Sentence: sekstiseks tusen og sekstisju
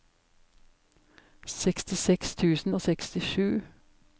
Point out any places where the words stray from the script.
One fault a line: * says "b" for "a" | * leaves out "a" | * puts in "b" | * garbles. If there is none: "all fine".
all fine